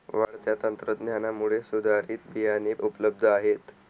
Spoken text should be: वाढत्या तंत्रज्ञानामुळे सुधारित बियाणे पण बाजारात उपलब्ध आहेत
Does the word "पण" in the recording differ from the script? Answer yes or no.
yes